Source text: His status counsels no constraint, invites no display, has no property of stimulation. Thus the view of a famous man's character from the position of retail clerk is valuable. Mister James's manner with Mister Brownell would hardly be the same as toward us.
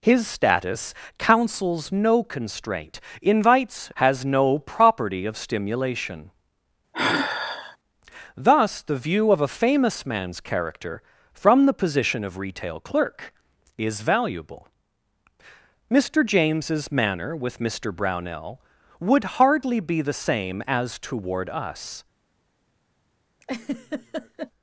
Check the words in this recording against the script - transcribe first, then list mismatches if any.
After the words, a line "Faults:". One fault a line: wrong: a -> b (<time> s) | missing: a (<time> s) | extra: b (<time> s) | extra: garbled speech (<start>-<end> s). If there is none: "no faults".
His status counsels no constraint, invites has no property of stimulation. Thus the view of a famous man's character from the position of retail clerk is valuable. Mister James's manner with Mister Brownell would hardly be the same as toward us.
Faults:
missing: no display (3.9 s)